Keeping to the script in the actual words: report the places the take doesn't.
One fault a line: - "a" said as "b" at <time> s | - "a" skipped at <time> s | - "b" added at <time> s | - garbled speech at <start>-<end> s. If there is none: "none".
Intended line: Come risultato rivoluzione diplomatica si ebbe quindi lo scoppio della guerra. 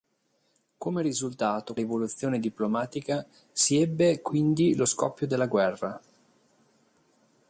none